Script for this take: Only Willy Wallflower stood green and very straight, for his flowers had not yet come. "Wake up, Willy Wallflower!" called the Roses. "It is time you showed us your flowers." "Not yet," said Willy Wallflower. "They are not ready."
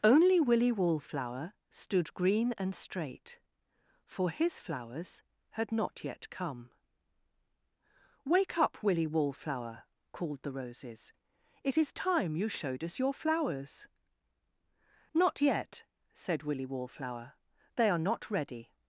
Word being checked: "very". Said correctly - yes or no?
no